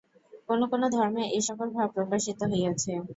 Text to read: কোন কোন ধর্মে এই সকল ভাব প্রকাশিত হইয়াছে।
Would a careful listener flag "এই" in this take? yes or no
no